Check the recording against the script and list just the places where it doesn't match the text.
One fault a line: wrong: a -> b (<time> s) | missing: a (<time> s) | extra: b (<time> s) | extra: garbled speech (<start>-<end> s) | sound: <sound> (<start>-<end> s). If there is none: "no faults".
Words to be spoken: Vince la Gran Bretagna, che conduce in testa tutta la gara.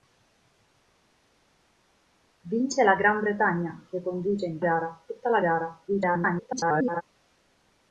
wrong: testa -> gara (4.6 s)
extra: garbled speech (5.9-7.0 s)